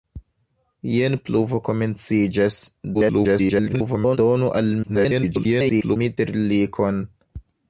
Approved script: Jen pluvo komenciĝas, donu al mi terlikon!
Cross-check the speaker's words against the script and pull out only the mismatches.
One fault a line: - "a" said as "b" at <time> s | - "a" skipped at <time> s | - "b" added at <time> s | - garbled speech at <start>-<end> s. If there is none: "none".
- garbled speech at 2.9-4.2 s
- garbled speech at 4.8-6.0 s